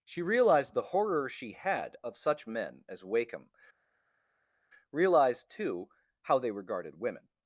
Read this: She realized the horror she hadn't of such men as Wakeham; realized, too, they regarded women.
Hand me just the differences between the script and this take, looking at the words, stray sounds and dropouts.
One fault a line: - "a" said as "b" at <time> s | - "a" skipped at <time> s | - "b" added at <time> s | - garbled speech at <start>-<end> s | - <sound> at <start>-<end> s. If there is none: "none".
- "hadn't" said as "had" at 1.5 s
- "how" added at 6.2 s